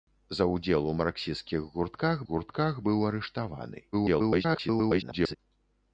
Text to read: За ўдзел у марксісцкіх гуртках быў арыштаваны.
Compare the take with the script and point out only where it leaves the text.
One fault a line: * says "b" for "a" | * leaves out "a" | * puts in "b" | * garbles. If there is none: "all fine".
* puts in "гуртках"
* garbles